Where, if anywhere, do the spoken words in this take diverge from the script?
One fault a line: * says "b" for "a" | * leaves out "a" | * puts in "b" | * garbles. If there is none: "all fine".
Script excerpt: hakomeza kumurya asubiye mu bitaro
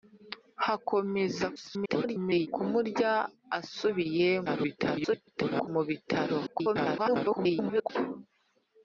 * garbles
* garbles
* garbles